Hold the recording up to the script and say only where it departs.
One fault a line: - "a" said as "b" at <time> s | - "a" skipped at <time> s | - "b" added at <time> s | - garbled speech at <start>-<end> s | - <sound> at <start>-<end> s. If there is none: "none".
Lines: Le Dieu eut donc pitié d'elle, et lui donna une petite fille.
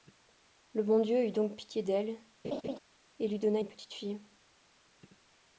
- "bon" added at 0.8 s
- laugh at 2.4-2.8 s